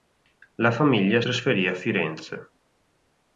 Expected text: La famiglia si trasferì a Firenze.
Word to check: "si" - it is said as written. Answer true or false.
false